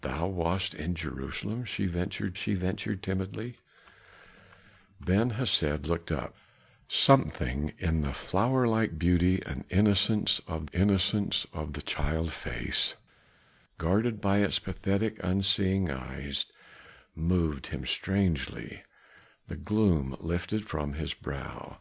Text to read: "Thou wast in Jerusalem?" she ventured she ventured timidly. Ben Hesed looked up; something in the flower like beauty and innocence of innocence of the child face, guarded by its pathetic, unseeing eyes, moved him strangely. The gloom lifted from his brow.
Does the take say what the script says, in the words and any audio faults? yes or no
yes